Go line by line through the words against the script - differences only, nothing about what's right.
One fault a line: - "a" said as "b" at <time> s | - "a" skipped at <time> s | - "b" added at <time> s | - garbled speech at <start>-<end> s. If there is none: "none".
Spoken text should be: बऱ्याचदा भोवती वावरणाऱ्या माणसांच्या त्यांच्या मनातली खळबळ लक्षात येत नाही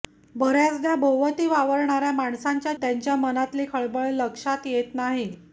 none